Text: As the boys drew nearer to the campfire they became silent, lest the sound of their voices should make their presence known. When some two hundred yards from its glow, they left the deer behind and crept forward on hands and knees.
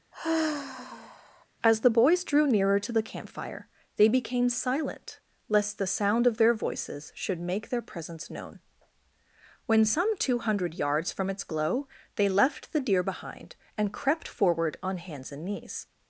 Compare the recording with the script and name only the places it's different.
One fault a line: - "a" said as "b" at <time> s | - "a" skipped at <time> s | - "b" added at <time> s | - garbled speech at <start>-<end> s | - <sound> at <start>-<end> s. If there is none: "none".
- sigh at 0.1-1.5 s